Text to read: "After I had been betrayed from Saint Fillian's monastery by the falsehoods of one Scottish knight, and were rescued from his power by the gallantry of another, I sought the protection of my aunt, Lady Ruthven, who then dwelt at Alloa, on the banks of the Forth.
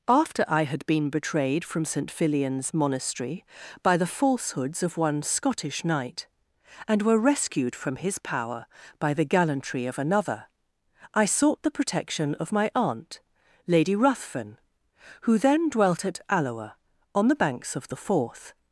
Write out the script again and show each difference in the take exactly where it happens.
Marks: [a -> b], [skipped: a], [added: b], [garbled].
"After I had been betrayed from Saint Fillian's monastery by the falsehoods of one Scottish knight, and were rescued from his power by the gallantry of another, I sought the protection of my aunt, Lady Ruthven, who then dwelt at Alloa, on the banks of the Forth.